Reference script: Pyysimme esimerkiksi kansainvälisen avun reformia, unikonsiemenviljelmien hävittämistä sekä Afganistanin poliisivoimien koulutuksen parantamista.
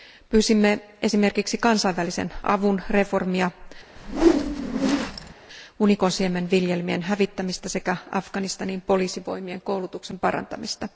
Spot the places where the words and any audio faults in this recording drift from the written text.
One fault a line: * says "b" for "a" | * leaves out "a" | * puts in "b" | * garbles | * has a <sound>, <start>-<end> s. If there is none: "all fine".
* has a whoosh, 4.0-5.3 s